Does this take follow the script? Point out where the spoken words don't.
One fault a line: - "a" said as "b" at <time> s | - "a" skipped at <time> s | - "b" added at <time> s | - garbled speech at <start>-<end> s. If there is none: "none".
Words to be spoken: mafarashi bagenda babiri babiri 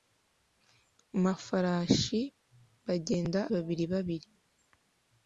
none